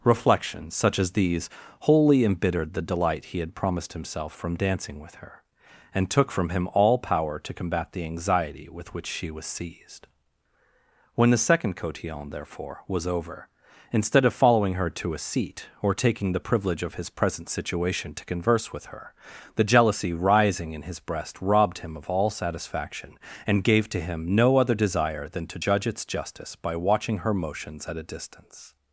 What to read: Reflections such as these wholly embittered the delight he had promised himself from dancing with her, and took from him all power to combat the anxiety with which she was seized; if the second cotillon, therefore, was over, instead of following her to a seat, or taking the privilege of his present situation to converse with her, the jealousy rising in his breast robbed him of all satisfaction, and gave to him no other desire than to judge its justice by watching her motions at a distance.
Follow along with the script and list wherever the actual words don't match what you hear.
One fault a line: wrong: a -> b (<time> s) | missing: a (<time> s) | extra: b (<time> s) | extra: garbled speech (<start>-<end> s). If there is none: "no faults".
wrong: if -> when (11.1 s)